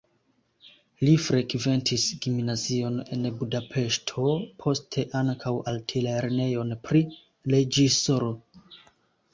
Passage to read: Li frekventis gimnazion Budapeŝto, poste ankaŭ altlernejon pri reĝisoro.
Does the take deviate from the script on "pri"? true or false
false